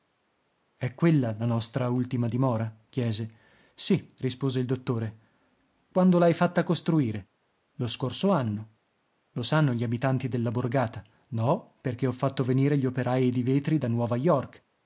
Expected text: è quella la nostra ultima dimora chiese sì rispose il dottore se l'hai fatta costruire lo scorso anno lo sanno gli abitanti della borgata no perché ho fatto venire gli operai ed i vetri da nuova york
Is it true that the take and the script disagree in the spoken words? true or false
true